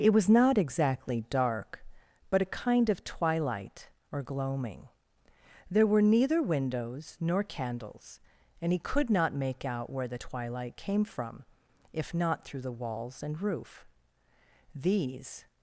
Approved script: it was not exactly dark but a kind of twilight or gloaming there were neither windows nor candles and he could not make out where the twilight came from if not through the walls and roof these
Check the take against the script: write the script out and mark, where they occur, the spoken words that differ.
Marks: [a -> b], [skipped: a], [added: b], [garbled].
it was not exactly dark but a kind of twilight or gloaming there were neither windows nor candles and he could not make out where the twilight came from if not through the walls and roof these